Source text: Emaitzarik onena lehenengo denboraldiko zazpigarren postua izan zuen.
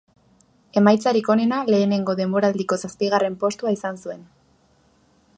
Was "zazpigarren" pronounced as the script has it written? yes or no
yes